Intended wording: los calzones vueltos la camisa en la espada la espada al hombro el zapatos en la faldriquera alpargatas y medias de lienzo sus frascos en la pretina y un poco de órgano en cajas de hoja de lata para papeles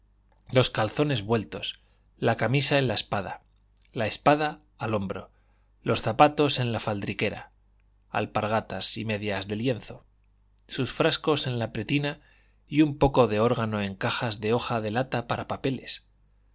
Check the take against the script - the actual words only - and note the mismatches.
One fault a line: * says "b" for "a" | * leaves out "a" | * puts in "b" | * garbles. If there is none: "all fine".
* says "los" for "el"